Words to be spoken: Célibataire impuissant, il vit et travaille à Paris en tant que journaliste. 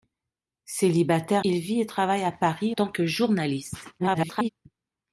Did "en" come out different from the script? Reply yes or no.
yes